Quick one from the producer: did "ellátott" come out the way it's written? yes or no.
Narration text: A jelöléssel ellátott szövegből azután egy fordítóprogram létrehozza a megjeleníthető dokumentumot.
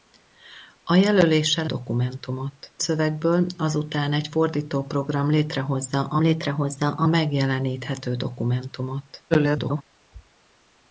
no